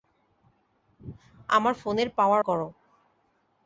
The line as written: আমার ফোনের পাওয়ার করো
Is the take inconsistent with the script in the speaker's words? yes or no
no